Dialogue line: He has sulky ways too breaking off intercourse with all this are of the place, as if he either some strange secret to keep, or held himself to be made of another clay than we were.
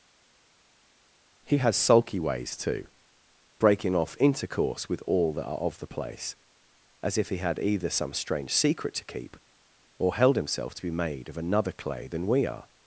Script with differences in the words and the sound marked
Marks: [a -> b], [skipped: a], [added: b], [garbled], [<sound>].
He has sulky ways too breaking off intercourse with all [this -> that] are of the place, as if he [added: had] either some strange secret to keep, or held himself to be made of another clay than we [were. -> are]